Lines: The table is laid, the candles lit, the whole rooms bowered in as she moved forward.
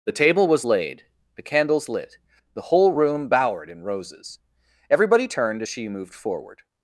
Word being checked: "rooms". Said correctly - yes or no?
no